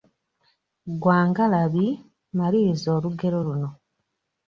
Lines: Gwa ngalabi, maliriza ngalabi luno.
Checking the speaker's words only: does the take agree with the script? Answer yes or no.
no